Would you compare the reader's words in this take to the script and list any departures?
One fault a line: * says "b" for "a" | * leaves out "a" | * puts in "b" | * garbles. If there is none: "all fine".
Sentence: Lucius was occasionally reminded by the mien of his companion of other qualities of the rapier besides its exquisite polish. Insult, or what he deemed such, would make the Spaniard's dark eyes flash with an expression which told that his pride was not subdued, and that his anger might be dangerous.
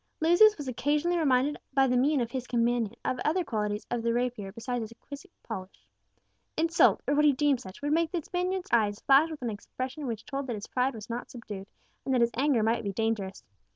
* leaves out "dark"